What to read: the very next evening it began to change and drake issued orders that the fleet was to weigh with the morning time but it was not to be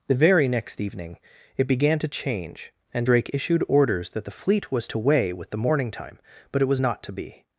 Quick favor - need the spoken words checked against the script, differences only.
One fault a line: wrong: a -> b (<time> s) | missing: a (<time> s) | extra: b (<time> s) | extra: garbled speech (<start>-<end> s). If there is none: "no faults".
no faults